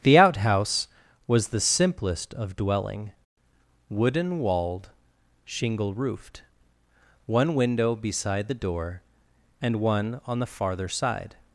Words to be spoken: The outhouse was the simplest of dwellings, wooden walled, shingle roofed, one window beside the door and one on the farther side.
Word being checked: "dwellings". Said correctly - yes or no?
no